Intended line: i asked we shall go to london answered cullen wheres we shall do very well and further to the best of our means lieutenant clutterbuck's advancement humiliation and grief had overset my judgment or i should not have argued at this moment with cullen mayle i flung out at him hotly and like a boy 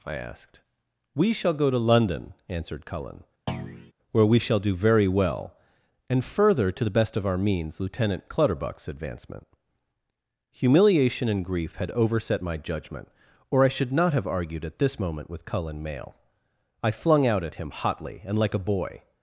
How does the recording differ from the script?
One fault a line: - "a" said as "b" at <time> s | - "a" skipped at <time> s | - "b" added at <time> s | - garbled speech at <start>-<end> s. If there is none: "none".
- "wheres" said as "where" at 4.1 s